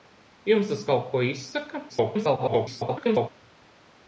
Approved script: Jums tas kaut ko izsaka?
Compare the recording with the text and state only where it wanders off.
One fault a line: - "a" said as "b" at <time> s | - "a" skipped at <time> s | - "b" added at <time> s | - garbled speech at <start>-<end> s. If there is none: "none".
- garbled speech at 1.9-3.3 s